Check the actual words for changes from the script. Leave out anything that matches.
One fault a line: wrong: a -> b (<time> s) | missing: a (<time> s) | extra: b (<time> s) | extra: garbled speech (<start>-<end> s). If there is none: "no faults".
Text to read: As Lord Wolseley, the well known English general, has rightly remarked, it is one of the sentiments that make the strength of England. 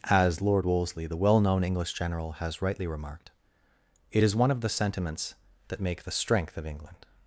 no faults